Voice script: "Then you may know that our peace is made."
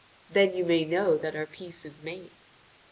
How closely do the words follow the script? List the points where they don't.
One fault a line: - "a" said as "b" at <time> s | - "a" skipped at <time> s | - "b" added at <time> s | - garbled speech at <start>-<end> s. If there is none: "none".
none